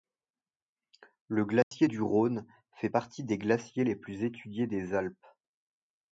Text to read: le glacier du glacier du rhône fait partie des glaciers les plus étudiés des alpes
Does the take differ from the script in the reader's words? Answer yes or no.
yes